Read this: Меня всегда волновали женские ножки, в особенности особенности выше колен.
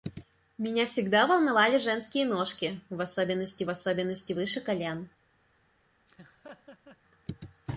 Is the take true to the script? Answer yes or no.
yes